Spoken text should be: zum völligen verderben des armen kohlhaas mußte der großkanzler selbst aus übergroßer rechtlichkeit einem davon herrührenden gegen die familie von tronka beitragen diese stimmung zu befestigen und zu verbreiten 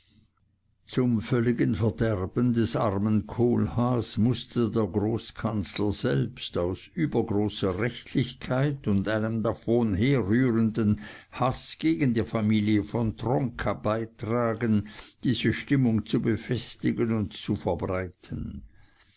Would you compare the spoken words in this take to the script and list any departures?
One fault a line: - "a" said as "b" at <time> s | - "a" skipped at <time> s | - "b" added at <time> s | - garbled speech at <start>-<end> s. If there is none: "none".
- "und" added at 8.9 s
- "haß" added at 11.3 s